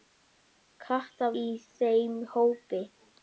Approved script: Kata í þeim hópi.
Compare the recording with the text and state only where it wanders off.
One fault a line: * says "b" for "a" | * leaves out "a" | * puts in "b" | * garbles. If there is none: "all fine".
all fine